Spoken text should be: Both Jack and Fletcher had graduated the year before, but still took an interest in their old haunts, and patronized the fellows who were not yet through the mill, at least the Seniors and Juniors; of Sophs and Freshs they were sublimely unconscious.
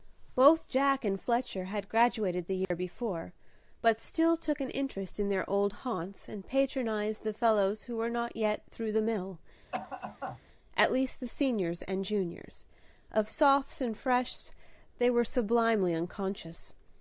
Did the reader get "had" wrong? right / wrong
right